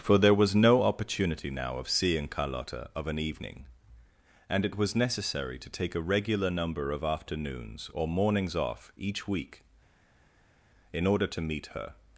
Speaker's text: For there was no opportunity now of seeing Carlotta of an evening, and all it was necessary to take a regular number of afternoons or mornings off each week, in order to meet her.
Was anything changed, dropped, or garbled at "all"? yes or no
yes